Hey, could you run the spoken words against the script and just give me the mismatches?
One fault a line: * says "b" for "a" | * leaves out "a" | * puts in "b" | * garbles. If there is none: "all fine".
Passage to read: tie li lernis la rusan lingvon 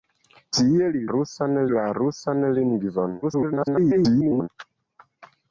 * says "rusan" for "lernis"
* garbles